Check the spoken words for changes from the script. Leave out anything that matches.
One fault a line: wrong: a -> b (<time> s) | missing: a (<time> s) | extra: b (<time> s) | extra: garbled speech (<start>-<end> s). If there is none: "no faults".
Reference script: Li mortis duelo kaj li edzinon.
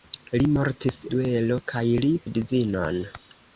no faults